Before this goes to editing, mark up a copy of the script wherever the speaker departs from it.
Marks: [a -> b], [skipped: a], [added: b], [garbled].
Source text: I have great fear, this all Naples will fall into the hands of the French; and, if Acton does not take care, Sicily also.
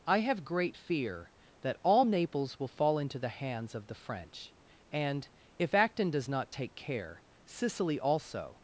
I have great fear, [this -> that] all Naples will fall into the hands of the French; and, if Acton does not take care, Sicily also.